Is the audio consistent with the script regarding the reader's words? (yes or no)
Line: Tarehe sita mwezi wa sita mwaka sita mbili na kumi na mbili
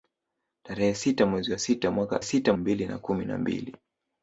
yes